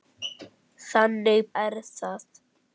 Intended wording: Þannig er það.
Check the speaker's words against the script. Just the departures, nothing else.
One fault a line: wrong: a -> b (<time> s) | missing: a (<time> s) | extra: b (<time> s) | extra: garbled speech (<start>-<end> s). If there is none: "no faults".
no faults